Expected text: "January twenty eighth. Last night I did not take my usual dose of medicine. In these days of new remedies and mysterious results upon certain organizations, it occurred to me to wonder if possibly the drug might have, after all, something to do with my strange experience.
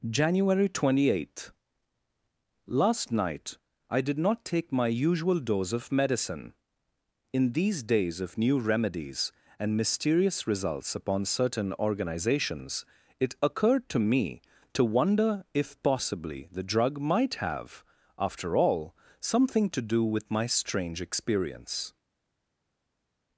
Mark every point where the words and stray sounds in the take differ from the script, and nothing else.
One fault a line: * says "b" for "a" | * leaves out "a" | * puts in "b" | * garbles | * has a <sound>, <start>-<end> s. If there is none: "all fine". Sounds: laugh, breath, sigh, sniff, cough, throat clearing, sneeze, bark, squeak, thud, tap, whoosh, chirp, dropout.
all fine